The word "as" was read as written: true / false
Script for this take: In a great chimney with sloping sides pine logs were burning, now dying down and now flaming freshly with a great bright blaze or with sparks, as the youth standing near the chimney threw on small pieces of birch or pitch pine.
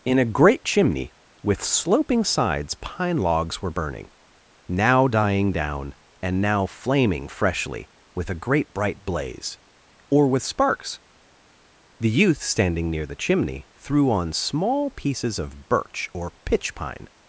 false